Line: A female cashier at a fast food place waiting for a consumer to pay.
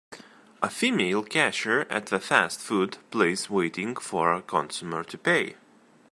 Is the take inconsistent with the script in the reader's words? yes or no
no